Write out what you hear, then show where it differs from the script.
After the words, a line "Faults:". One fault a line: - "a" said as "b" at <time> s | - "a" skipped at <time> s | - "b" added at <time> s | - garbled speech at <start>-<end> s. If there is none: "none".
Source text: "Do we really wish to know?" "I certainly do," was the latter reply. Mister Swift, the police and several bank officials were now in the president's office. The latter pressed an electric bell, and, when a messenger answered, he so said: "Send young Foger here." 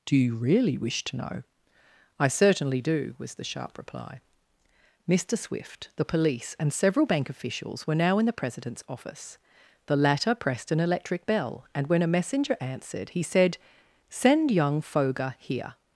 "Do you really wish to know?" "I certainly do," was the sharp reply. Mister Swift, the police and several bank officials were now in the president's office. The latter pressed an electric bell, and, when a messenger answered, he said: "Send young Foger here."
Faults:
- "we" said as "you" at 0.1 s
- "latter" said as "sharp" at 3.4 s
- "so" skipped at 13.2 s